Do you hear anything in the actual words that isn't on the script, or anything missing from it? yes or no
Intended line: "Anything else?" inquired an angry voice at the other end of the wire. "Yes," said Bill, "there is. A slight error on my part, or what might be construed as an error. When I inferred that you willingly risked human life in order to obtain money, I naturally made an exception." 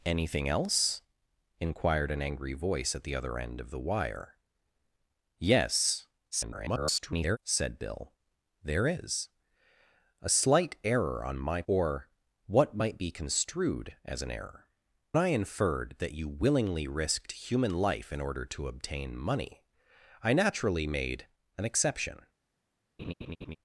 yes